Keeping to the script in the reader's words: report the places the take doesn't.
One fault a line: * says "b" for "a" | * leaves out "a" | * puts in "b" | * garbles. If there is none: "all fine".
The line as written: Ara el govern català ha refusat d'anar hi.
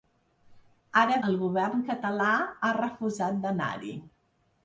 all fine